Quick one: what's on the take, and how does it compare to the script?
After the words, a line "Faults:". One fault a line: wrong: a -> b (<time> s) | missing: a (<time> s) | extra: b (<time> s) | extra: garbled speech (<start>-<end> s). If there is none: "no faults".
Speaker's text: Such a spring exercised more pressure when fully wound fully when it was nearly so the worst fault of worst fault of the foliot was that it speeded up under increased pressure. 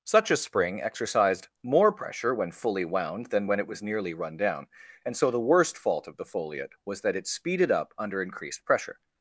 Such a spring exercised more pressure when fully wound than when it was nearly run down. And so the worst fault of the foliot was that it speeded up under increased pressure.
Faults:
wrong: fully -> than (3.3 s)
wrong: so the worst fault of -> run down And so the (4.2 s)